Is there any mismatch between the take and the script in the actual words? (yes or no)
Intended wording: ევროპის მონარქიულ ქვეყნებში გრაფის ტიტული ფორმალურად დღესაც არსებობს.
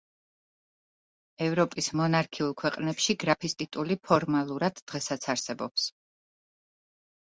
no